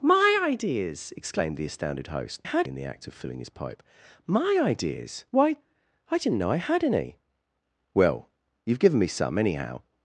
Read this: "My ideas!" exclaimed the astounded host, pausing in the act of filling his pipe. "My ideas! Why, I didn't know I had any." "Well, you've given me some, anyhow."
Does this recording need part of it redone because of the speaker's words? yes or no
yes